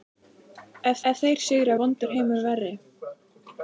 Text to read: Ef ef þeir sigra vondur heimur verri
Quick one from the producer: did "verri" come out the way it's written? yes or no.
yes